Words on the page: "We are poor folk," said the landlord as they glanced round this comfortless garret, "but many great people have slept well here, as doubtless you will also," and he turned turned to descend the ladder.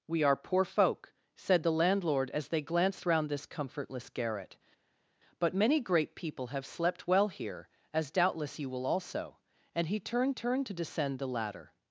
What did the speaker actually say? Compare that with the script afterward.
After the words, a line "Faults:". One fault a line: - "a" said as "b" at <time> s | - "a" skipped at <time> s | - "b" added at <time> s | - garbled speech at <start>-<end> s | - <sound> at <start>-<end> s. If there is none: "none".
"We are poor folk," said the landlord as they glanced round this comfortless garret, "but many great people have slept well here, as doubtless you will also," and he turned turned to descend the ladder.
Faults:
none